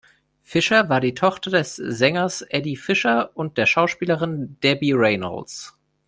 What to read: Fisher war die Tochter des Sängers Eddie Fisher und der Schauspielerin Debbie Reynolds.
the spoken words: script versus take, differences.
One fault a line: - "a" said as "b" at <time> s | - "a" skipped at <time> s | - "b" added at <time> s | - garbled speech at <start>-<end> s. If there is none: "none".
none